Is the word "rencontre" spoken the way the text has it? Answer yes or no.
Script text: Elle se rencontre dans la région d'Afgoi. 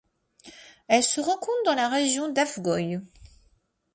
yes